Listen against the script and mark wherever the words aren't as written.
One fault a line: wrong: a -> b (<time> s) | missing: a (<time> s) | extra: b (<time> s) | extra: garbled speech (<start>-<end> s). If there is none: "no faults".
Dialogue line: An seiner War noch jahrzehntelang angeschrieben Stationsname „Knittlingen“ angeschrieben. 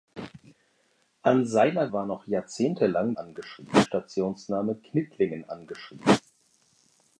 no faults